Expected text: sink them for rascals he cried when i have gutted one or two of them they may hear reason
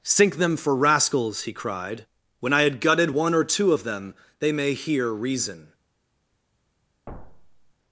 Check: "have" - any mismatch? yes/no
yes